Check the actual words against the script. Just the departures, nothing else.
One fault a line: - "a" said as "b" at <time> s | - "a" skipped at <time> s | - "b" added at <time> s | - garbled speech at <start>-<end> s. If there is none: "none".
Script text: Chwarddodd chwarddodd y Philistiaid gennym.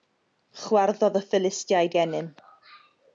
- "chwarddodd" skipped at 1.2 s